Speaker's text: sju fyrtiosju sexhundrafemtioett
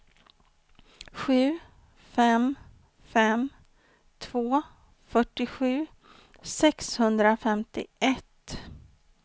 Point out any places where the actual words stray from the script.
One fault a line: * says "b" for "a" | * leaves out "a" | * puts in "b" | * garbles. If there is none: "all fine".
* puts in "fem fem två"